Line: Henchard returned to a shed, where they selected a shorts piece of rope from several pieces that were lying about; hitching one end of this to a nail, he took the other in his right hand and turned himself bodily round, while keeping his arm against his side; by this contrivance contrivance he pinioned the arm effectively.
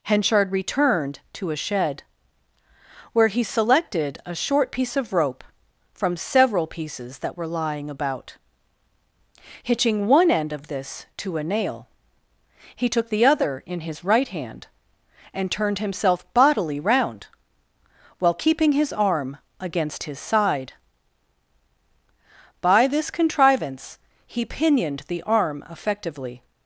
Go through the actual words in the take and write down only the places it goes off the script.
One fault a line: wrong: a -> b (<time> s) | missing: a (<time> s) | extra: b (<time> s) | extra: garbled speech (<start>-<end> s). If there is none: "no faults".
wrong: they -> he (3.3 s)
wrong: shorts -> short (4.3 s)
missing: contrivance (24.0 s)